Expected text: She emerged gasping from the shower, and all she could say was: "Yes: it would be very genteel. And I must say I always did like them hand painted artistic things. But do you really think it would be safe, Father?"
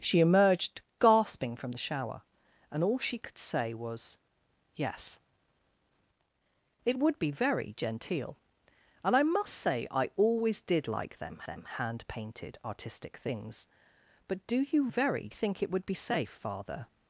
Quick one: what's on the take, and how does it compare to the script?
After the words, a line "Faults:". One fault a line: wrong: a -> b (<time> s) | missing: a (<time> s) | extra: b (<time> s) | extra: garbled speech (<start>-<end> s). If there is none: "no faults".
She emerged gasping from the shower, and all she could say was: "Yes: it would be very genteel. And I must say I always did like them them hand painted artistic things. But do you very think it would be safe, Father?"
Faults:
extra: them (11.5 s)
wrong: really -> very (14.9 s)